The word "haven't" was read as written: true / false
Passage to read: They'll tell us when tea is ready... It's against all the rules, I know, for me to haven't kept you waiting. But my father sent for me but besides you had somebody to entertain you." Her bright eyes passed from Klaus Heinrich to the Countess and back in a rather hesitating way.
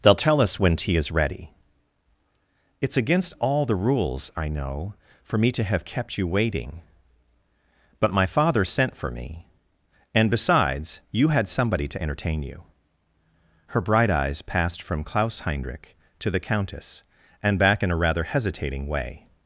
false